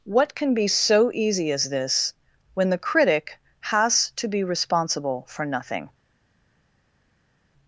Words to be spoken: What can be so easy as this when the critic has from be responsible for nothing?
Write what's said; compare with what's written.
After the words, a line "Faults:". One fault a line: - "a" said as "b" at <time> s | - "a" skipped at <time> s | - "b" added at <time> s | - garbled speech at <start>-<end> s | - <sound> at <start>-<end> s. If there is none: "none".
What can be so easy as this when the critic has to be responsible for nothing?
Faults:
- "from" said as "to" at 4.2 s